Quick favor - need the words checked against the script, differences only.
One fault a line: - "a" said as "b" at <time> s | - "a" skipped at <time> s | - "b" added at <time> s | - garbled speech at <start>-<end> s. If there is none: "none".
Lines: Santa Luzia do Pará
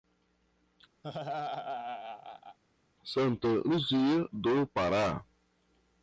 none